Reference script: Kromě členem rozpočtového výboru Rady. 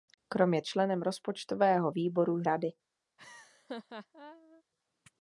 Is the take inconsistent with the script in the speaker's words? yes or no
no